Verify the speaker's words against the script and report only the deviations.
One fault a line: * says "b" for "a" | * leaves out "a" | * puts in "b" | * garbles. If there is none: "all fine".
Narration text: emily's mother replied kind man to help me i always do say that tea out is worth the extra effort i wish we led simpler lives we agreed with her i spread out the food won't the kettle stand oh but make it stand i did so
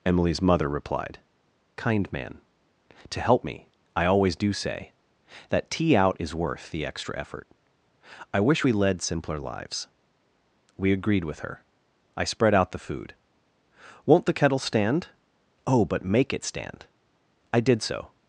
all fine